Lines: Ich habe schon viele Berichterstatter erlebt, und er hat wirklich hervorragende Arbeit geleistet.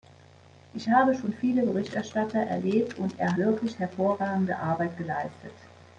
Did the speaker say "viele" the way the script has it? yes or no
yes